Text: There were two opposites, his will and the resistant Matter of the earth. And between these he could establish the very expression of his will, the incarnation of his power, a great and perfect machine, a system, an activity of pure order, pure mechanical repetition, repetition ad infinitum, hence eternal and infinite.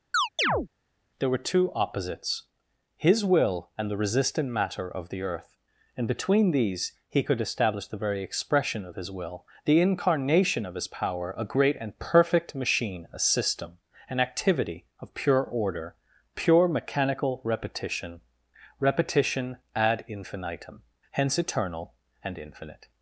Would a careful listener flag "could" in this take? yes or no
no